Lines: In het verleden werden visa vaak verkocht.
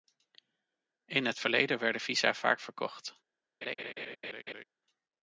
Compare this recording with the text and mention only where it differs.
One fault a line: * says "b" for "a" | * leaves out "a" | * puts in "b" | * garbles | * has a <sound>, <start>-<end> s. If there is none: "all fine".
* has a laugh, 3.6-4.6 s